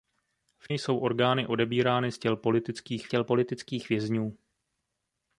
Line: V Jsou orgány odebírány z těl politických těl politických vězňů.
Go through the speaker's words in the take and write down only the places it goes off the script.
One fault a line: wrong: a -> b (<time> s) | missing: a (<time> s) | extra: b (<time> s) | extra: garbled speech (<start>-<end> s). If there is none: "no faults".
no faults